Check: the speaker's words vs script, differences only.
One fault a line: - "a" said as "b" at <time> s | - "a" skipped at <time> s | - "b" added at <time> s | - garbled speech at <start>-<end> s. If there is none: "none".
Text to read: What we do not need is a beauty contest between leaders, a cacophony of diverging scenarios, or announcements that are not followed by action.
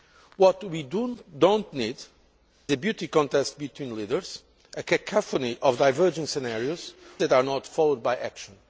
- "is" skipped at 2.0 s
- "or announcements" skipped at 6.9 s